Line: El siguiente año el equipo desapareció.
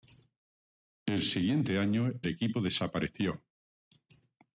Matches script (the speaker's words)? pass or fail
fail